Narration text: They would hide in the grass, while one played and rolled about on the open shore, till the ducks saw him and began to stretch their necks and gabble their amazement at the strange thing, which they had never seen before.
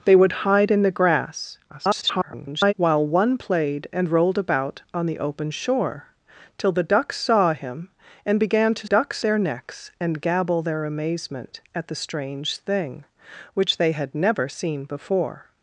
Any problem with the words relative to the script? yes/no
yes